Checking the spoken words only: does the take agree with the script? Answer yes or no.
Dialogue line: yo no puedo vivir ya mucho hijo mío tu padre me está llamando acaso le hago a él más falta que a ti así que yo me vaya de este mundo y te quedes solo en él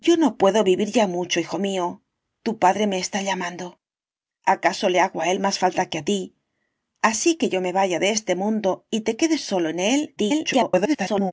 no